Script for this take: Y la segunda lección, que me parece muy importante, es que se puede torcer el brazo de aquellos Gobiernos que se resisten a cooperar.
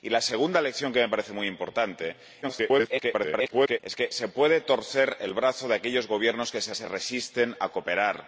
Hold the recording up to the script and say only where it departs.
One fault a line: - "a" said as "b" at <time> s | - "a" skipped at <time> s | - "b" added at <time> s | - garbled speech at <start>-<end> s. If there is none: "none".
- garbled speech at 2.4-3.8 s
- "se" added at 6.7 s